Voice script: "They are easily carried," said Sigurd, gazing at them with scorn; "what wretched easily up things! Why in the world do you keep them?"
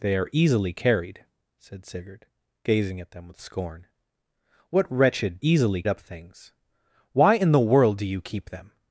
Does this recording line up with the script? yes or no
yes